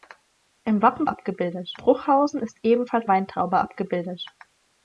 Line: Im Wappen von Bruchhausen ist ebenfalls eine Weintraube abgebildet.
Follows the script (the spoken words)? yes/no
no